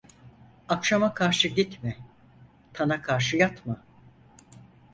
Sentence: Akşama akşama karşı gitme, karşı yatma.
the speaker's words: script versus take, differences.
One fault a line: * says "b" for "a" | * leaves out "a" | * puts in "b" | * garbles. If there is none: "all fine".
* leaves out "akşama"
* puts in "tana"